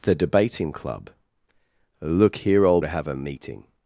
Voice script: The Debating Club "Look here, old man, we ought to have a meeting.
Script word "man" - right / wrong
wrong